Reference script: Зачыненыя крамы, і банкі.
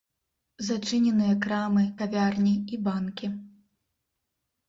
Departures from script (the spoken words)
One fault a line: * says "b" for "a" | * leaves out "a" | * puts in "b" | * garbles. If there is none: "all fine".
* puts in "кавярні"